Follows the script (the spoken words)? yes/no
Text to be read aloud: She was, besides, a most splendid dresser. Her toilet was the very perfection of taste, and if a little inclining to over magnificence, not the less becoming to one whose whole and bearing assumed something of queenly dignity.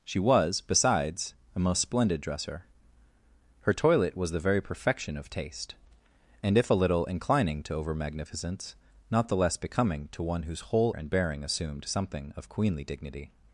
yes